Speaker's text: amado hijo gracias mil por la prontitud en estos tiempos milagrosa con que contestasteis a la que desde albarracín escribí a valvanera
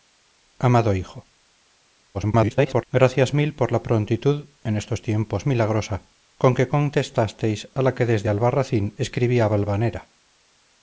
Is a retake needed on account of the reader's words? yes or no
yes